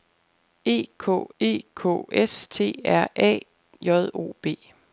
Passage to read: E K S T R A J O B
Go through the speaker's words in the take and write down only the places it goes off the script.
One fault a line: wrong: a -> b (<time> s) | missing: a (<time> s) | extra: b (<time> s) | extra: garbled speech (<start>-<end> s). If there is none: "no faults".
extra: e K (1.4 s)